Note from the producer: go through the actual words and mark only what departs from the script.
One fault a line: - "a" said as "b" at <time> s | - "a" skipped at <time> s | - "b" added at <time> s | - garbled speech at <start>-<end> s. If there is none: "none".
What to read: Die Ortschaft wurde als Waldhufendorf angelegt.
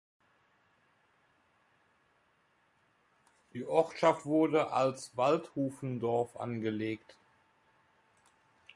none